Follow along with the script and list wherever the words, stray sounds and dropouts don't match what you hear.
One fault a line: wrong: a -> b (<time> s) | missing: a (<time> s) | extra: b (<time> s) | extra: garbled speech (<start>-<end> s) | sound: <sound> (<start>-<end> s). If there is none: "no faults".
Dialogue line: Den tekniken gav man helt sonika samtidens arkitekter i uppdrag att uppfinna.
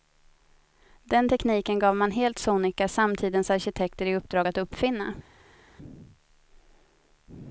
no faults